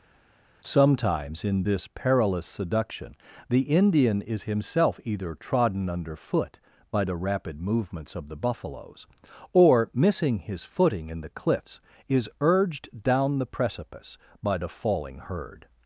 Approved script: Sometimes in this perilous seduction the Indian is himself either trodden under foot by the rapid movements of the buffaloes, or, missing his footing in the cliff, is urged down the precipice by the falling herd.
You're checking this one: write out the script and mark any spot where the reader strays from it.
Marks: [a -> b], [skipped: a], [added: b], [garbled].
Sometimes in this perilous seduction the Indian is himself either trodden under foot by the rapid movements of the buffaloes, or, missing his footing in the [cliff, -> cliffs] is urged down the precipice by the falling herd.